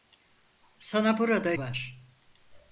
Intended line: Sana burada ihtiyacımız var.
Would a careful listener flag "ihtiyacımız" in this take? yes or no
yes